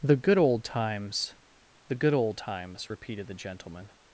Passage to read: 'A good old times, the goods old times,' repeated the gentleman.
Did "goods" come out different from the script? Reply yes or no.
yes